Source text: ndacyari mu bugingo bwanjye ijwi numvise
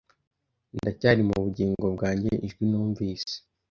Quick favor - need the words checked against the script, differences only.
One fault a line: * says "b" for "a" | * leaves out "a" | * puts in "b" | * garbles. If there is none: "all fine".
all fine